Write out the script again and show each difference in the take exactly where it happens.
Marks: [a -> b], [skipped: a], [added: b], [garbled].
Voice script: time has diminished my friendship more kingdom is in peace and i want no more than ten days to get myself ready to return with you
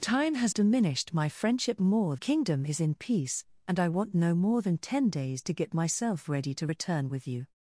time has diminished my friendship more kingdom is in peace and i want no more than ten days to get myself ready to return with you